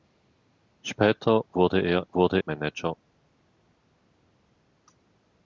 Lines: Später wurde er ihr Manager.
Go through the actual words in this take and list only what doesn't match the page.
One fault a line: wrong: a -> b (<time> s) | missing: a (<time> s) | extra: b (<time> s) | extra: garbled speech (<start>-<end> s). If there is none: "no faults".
wrong: ihr -> wurde (2.1 s)